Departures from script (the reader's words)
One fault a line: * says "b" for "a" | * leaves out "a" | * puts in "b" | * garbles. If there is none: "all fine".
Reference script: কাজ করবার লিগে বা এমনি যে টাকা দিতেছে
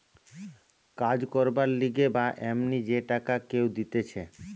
* puts in "কেউ"